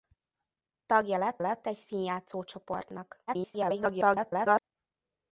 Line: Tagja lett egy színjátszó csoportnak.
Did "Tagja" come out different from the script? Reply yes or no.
no